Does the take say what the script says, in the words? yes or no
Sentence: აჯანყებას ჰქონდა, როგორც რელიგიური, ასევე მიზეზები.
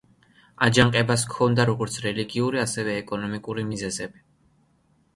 no